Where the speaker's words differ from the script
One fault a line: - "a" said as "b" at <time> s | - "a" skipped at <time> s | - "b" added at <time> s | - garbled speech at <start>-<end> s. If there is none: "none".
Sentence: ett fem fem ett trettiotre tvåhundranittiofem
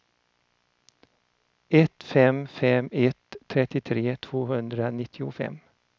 none